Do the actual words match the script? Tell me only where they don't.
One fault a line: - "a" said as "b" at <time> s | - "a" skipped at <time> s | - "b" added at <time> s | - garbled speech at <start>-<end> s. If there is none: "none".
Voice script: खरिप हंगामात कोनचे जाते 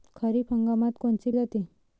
none